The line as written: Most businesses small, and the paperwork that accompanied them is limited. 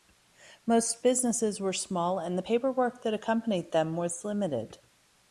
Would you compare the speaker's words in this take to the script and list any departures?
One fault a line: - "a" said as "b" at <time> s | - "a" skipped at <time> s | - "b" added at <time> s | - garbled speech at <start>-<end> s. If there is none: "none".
- "were" added at 1.6 s
- "is" said as "was" at 4.0 s